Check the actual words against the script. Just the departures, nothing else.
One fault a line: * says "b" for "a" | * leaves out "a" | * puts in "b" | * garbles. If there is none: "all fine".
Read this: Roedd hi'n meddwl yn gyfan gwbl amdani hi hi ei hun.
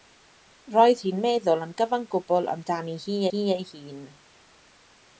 all fine